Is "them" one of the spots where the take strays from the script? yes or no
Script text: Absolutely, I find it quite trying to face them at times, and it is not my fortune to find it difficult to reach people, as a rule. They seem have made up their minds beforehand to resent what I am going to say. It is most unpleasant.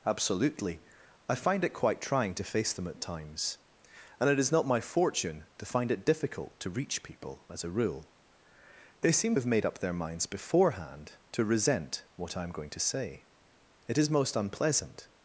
no